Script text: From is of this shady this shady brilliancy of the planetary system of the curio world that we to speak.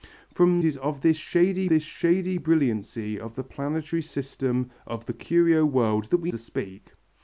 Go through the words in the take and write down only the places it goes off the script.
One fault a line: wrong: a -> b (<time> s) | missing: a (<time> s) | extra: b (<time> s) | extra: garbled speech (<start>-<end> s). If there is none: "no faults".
no faults